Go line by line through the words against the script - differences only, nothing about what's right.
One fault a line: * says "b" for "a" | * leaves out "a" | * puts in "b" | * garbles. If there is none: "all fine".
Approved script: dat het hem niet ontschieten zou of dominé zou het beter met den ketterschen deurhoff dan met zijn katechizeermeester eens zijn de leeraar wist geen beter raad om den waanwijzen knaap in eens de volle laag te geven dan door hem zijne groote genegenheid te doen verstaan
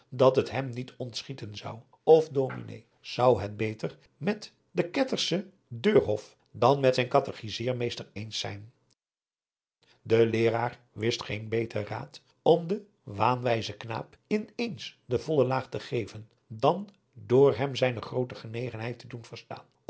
all fine